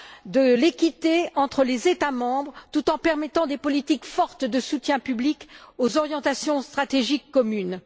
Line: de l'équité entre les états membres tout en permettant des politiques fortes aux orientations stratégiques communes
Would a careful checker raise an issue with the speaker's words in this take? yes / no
yes